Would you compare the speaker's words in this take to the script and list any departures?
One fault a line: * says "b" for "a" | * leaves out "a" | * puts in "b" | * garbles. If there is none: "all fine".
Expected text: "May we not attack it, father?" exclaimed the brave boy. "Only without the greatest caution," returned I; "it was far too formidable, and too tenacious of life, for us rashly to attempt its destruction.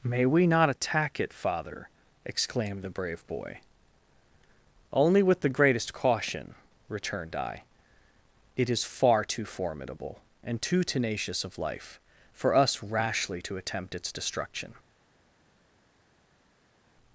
* says "with" for "without"
* says "is" for "was"